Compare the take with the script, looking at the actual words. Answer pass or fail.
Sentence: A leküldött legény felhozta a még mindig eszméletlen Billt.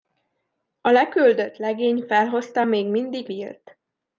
fail